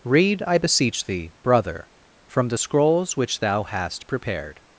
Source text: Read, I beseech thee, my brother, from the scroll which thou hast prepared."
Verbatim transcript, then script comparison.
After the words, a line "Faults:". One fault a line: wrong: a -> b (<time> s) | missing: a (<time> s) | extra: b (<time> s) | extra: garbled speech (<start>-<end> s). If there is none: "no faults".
Read, I beseech thee, brother, from the scrolls which thou hast prepared."
Faults:
missing: my (1.3 s)
wrong: scroll -> scrolls (2.5 s)